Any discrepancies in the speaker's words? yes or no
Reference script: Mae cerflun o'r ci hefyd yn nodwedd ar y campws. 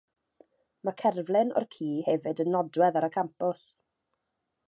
no